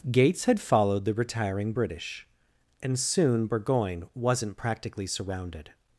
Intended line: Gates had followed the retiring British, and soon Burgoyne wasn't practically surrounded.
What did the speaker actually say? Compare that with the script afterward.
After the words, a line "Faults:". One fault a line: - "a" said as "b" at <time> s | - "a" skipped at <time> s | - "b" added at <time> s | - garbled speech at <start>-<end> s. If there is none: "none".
Gates had followed the retiring British, and soon Burgoyne wasn't practically surrounded.
Faults:
none